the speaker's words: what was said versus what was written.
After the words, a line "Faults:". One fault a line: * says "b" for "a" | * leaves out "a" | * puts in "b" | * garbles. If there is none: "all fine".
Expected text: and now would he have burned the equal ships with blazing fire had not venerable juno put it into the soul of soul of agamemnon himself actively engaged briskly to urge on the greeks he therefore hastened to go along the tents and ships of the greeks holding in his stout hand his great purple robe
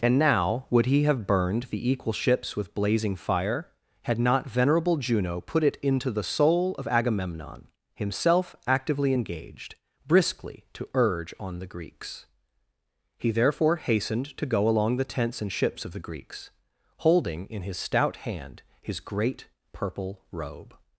and now would he have burned the equal ships with blazing fire had not venerable juno put it into the soul of agamemnon himself actively engaged briskly to urge on the greeks he therefore hastened to go along the tents and ships of the greeks holding in his stout hand his great purple robe
Faults:
* leaves out "soul of"